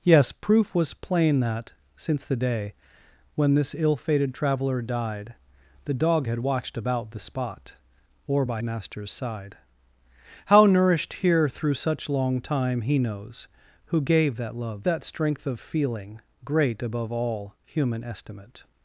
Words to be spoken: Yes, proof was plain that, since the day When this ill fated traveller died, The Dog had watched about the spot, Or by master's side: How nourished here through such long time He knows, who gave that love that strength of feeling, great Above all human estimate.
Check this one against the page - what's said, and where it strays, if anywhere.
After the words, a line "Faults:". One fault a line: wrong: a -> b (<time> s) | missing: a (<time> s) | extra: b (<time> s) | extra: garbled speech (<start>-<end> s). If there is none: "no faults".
Yes, proof was plain that, since the day When this ill fated traveller died, The Dog had watched about the spot, Or by master's side: How nourished here through such long time He knows, who gave that love that strength of feeling, great Above all human estimate.
Faults:
no faults